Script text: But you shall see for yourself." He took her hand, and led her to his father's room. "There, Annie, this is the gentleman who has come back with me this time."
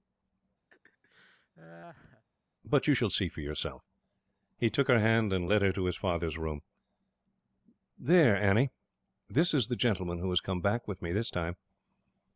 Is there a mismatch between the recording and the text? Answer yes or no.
no